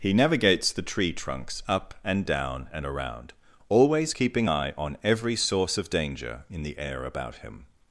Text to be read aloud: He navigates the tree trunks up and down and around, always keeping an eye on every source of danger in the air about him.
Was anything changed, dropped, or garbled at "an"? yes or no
yes